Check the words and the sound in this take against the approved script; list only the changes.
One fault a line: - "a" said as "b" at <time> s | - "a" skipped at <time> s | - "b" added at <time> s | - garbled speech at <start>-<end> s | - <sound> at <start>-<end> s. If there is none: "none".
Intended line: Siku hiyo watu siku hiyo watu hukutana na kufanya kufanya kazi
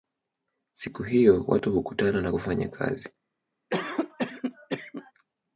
- "siku hiyo watu" skipped at 1.7 s
- "kufanya" skipped at 2.7 s
- cough at 3.7-5.1 s